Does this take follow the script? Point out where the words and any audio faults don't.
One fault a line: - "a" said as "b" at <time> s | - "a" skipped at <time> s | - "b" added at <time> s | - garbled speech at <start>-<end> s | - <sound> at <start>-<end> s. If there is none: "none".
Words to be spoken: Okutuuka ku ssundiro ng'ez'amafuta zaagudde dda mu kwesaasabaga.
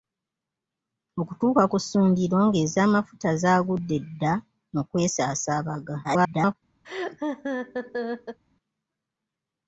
- garbled speech at 6.0-6.5 s
- laugh at 6.8-8.4 s